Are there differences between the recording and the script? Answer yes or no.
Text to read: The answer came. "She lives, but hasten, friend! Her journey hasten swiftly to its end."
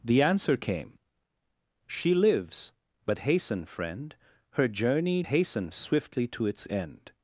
no